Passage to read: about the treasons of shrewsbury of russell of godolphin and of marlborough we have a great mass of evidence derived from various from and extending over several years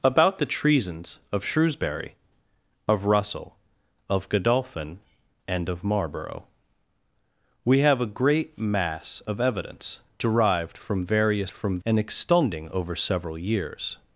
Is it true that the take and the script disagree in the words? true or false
false